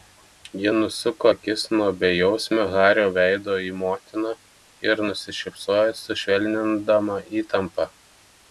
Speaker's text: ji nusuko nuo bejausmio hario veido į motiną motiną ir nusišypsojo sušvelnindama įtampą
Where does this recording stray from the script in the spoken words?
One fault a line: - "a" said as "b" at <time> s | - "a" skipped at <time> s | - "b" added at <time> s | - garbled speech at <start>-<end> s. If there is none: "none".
- "akis" added at 1.3 s
- "motiną" skipped at 4.3 s